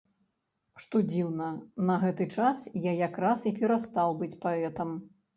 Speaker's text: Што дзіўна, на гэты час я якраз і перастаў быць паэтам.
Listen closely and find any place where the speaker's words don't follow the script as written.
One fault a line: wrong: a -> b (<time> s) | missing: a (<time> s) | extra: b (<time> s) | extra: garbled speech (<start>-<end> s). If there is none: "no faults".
no faults